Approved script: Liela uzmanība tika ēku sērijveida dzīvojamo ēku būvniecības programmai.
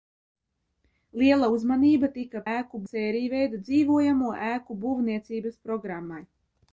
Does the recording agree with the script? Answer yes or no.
yes